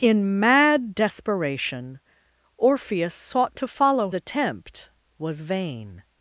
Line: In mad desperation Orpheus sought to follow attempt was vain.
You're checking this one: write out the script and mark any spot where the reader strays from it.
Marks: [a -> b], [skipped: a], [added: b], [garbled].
In mad desperation Orpheus sought to follow attempt was vain.